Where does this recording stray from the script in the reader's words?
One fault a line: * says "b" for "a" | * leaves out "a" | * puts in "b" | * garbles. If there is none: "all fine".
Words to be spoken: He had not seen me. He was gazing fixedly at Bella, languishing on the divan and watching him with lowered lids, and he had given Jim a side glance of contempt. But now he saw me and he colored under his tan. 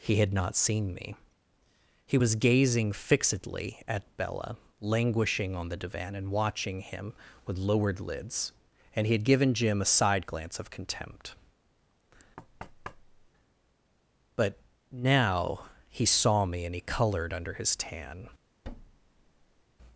all fine